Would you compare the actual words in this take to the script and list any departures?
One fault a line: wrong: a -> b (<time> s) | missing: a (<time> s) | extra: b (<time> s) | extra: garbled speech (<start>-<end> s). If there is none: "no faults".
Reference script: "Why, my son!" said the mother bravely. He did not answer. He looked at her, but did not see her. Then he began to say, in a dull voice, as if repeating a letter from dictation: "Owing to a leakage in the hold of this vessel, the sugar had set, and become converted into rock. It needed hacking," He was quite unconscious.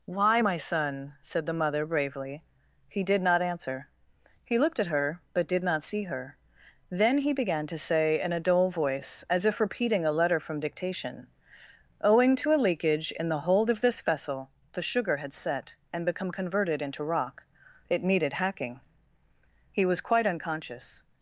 no faults